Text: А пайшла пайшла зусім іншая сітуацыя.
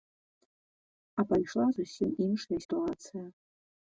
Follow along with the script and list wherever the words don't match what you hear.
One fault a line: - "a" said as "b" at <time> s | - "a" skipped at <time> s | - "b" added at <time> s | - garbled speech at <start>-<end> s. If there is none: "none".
- "пайшла" skipped at 1.7 s